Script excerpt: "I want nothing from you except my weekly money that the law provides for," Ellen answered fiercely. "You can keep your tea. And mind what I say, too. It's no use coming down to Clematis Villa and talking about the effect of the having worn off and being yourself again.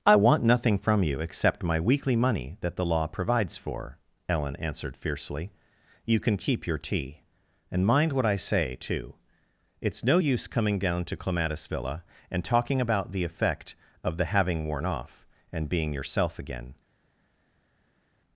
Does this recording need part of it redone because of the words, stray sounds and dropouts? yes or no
no